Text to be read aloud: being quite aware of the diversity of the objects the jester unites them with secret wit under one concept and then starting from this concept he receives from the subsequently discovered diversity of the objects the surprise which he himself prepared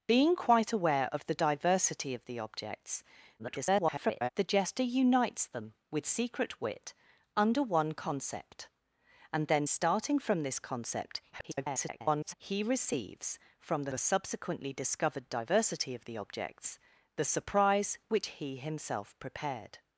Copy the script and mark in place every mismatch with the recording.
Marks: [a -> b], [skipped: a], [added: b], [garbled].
being quite aware of the diversity of the objects [garbled] the jester unites them with secret wit under one concept and then starting from this concept [garbled] he receives from the [added: the] subsequently discovered diversity of the objects the surprise which he himself prepared